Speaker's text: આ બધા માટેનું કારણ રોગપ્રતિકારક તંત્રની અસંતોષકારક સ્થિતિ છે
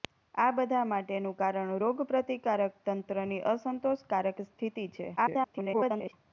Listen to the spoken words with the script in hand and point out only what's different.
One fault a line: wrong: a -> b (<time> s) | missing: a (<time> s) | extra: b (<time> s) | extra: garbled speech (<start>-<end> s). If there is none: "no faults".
extra: garbled speech (5.2-6.1 s)